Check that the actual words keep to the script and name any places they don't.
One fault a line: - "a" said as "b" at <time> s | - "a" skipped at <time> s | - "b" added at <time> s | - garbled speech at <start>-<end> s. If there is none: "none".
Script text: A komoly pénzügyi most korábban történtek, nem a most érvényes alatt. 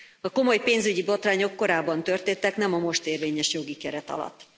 - "most" said as "botrányok" at 1.0 s
- "jogi keret" added at 3.5 s